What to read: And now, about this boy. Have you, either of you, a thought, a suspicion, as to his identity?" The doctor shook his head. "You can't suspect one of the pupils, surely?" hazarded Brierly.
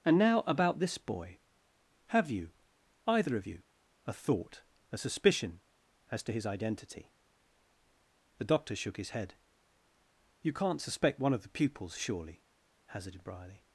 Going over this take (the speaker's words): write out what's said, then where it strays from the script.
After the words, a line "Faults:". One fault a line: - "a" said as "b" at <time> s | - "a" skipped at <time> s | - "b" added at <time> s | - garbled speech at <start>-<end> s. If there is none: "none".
And now, about this boy. Have you, either of you, a thought, a suspicion, as to his identity?" The doctor shook his head. "You can't suspect one of the pupils, surely?" hazarded Brierly.
Faults:
none